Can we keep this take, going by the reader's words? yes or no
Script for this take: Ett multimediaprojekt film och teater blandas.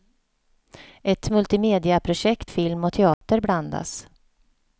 yes